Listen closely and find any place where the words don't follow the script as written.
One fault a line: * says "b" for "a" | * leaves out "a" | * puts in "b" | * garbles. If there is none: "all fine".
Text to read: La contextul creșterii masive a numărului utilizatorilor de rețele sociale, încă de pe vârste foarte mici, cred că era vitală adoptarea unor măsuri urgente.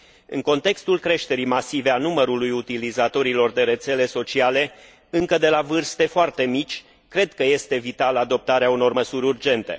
* says "În" for "La"
* says "la" for "pe"
* says "este" for "era"